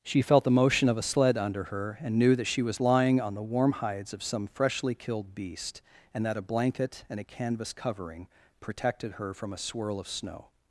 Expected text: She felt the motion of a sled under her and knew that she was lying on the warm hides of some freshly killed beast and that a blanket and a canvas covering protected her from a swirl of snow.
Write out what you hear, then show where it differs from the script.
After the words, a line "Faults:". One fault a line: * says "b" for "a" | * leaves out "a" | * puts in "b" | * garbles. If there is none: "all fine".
She felt the motion of a sled under her and knew that she was lying on the warm hides of some freshly killed beast and that a blanket and a canvas covering protected her from a swirl of snow.
Faults:
all fine